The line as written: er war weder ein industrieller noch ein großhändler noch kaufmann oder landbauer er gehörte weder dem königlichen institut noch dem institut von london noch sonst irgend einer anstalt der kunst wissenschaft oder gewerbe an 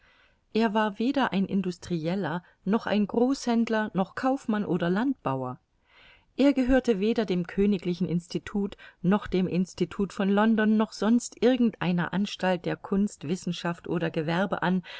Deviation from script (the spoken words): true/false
false